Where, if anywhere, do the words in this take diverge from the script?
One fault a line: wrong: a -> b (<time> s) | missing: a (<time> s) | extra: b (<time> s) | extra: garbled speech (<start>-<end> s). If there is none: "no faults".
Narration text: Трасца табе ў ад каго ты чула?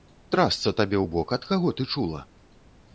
extra: бок (1.2 s)